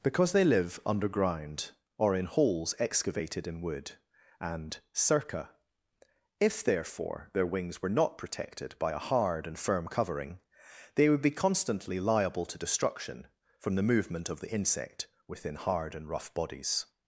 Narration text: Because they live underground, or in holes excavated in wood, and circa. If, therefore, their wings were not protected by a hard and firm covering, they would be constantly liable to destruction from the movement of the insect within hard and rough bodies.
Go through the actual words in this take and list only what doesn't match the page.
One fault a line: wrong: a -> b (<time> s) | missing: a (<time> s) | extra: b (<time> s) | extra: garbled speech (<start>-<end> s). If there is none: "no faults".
no faults